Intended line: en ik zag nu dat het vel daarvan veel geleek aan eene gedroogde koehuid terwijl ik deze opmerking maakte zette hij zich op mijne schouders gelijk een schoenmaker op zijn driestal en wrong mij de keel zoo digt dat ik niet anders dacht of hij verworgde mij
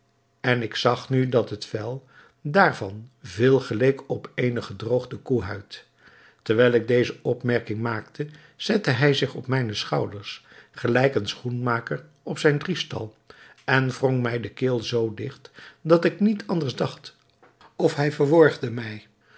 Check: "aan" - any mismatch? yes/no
yes